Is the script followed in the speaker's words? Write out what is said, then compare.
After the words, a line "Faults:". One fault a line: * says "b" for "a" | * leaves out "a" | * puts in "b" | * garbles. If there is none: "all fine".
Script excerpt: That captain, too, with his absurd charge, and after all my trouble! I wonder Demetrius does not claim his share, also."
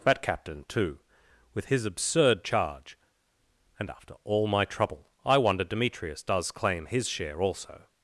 That captain, too, with his absurd charge, and after all my trouble! I wonder Demetrius does claim his share, also."
Faults:
* leaves out "not"